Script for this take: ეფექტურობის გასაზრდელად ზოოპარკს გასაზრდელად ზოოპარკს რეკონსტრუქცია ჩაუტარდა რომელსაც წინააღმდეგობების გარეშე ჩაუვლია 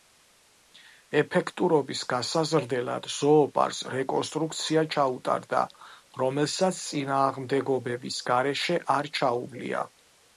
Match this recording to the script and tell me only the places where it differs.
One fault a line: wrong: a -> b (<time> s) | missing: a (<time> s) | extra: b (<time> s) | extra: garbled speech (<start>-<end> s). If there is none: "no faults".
missing: გასაზრდელად ზოოპარკს (3.8 s)
extra: არ (8.9 s)